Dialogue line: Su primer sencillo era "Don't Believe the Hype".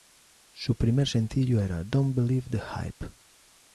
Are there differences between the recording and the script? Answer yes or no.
no